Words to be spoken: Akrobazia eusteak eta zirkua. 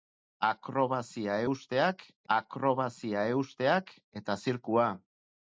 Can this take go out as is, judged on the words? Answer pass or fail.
fail